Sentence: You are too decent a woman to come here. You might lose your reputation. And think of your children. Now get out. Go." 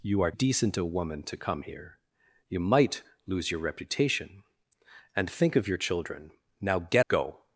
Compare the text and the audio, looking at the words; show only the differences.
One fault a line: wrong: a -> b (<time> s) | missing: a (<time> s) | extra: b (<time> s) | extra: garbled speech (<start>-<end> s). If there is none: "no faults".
missing: too (0.3 s)
missing: out (7.0 s)